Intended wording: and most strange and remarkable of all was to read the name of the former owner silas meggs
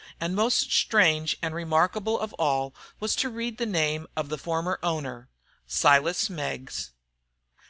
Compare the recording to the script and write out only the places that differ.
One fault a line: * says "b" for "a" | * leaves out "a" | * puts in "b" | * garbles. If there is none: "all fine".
all fine